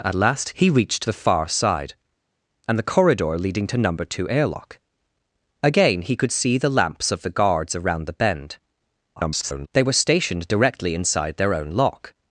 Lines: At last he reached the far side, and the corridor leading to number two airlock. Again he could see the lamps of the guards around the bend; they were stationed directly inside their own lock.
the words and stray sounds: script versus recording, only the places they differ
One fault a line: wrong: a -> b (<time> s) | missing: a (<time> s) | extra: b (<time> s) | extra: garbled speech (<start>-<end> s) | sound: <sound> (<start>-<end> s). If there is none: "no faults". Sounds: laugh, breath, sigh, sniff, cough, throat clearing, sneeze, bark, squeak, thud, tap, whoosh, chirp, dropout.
extra: garbled speech (9.2-9.7 s)